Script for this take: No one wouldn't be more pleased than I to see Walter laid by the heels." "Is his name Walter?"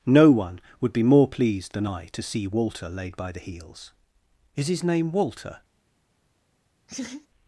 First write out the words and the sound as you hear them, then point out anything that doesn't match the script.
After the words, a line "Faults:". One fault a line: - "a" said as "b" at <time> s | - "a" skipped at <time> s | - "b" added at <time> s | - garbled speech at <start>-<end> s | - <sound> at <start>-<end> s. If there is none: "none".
No one would be more pleased than I to see Walter laid by the heels." "Is his name Walter?"
Faults:
- "wouldn't" said as "would" at 0.8 s
- laugh at 6.9-7.3 s